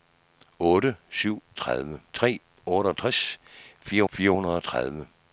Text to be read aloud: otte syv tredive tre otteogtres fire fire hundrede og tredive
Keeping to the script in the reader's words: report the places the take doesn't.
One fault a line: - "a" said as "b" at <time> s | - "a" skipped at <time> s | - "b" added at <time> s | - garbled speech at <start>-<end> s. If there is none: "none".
none